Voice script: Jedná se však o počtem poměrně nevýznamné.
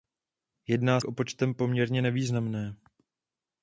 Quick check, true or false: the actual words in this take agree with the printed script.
false